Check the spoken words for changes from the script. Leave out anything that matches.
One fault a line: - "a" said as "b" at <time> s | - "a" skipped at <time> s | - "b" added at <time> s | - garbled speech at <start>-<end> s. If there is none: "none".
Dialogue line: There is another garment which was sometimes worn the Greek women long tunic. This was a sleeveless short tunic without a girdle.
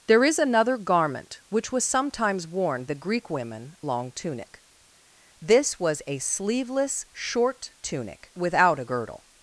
none